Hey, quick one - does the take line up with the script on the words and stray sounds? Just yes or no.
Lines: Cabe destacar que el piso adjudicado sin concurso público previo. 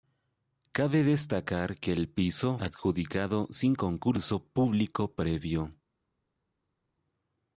yes